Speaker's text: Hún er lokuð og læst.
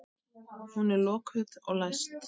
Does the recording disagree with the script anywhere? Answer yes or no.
no